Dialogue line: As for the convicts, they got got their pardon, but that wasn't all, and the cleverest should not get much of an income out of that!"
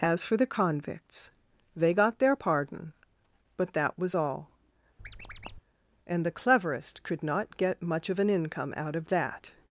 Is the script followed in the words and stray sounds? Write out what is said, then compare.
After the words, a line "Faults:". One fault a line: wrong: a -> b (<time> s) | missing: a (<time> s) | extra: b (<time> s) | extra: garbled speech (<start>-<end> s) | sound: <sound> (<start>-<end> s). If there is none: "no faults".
As for the convicts, they got their pardon, but that was all, and the cleverest could not get much of an income out of that!"
Faults:
missing: got (2.2 s)
wrong: wasn't -> was (4.0 s)
sound: squeak (5.0-5.6 s)
wrong: should -> could (7.0 s)